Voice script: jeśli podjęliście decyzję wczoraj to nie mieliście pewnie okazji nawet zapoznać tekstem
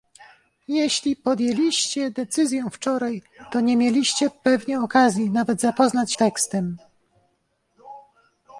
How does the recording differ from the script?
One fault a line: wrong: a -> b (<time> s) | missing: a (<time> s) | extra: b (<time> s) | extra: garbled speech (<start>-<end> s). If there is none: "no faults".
no faults